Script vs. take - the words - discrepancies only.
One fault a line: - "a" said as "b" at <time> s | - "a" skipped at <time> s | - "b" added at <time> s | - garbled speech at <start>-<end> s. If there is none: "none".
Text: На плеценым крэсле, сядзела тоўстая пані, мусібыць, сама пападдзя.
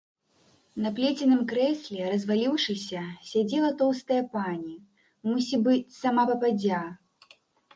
- "разваліўшыся" added at 2.1 s